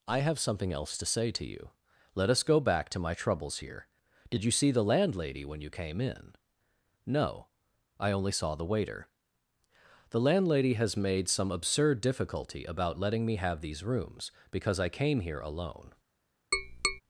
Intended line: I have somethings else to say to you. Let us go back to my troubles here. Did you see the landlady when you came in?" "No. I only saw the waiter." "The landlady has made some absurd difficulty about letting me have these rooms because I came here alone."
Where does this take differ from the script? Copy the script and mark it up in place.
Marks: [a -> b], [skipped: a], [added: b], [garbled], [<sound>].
I have [somethings -> something] else to say to you. Let us go back to my troubles here. Did you see the landlady when you came in?" "No. I only saw the waiter." "The landlady has made some absurd difficulty about letting me have these rooms because I came here alone." [tap]